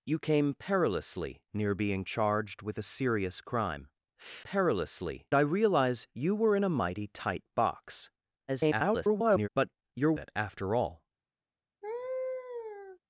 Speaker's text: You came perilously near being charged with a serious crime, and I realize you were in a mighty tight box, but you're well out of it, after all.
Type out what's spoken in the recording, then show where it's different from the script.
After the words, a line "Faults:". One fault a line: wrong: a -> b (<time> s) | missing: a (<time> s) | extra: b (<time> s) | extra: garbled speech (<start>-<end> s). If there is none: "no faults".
You came perilously near being charged with a serious crime, perilously I realize you were in a mighty tight box, [garbled] but you're it, after all.
Faults:
wrong: and -> perilously (4.4 s)
extra: garbled speech (8.5-9.5 s)
missing: well out of (10.2 s)